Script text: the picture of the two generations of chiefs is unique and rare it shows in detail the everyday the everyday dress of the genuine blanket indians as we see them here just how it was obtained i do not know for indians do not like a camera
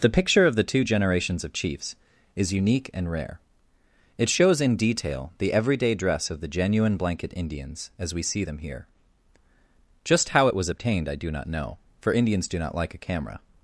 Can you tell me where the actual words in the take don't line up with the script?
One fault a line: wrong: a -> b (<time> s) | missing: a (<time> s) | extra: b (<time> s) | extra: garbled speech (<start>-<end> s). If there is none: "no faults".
missing: the everyday (5.9 s)